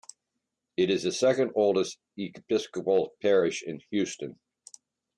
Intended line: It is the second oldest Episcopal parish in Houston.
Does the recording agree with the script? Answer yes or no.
yes